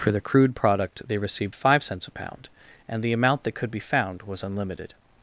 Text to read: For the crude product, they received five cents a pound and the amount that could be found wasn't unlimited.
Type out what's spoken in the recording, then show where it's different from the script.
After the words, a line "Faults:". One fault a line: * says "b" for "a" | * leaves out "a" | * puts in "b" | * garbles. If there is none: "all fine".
For the crude product, they received five cents a pound and the amount that could be found was unlimited.
Faults:
* says "was" for "wasn't"